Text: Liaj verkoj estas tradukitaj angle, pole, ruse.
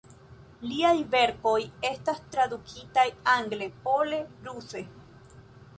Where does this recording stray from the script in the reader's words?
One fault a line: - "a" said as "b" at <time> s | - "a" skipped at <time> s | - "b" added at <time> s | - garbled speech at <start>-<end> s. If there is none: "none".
none